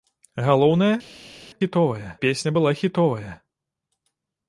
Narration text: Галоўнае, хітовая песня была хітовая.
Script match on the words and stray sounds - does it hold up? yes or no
yes